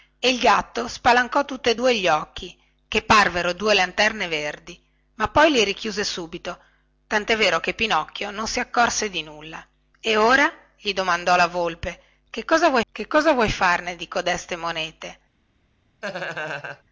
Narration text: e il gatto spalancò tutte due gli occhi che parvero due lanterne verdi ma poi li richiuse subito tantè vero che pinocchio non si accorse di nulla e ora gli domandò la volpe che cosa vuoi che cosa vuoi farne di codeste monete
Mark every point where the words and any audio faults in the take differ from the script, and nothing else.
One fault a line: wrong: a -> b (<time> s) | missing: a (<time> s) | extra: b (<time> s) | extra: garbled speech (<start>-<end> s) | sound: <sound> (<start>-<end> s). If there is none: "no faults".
sound: laugh (16.0-16.8 s)